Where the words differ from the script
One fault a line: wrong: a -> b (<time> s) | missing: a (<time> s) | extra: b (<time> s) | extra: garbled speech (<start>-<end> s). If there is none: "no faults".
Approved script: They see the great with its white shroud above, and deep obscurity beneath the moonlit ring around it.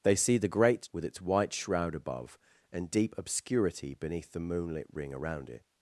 no faults